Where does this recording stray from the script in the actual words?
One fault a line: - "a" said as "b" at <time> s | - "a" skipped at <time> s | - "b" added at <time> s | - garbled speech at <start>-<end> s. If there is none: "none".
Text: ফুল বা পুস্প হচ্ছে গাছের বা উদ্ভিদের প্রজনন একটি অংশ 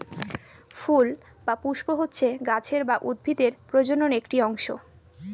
none